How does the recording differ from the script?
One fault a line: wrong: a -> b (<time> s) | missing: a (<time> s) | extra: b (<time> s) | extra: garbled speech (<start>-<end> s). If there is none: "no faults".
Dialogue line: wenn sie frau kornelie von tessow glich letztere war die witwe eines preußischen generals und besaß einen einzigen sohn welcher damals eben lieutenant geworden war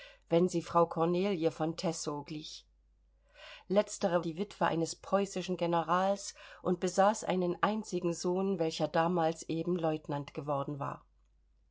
missing: war (4.2 s)